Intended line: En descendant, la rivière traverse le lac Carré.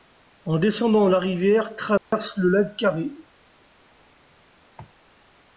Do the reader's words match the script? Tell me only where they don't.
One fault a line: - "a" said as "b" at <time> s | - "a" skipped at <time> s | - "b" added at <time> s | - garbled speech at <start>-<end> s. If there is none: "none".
none